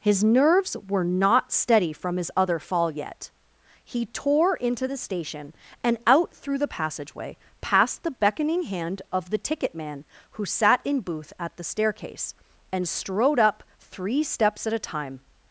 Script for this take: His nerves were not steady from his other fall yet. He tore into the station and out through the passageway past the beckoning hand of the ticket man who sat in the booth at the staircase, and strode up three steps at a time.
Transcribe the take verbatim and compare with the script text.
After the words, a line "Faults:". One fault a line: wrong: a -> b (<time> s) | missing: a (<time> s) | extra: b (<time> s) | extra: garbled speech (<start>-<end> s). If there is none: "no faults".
His nerves were not steady from his other fall yet. He tore into the station and out through the passageway past the beckoning hand of the ticket man who sat in booth at the staircase, and strode up three steps at a time.
Faults:
missing: the (11.0 s)